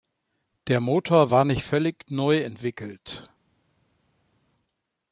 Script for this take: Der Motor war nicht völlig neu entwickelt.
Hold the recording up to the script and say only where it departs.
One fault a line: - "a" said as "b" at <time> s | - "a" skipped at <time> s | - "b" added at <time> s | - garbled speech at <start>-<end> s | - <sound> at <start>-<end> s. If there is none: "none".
none